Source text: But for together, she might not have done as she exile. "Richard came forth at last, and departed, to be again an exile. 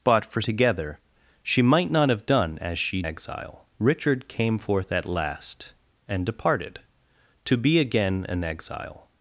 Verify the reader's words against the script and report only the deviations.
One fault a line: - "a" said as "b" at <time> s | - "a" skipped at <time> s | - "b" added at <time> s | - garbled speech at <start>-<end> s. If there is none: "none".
none